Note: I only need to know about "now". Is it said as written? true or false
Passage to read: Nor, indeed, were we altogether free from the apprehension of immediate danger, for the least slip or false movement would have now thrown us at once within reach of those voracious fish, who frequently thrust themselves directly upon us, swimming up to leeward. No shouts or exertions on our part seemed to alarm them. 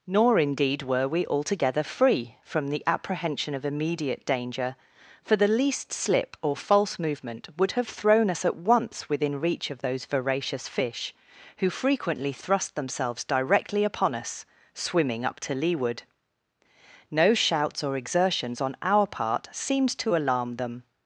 false